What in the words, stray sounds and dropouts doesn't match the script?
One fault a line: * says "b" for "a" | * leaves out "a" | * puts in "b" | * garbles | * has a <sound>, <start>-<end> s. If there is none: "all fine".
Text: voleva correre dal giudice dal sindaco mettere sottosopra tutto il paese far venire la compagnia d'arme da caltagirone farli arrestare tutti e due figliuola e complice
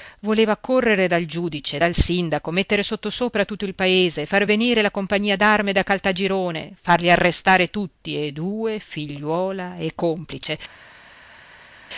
all fine